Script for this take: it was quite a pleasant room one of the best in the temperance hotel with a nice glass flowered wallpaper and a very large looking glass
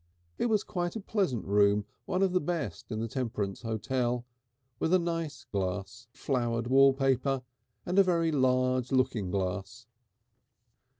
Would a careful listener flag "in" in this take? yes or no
no